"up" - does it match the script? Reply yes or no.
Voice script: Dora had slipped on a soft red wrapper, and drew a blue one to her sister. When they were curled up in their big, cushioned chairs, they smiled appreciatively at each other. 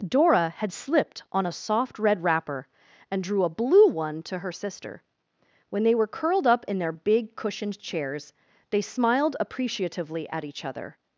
yes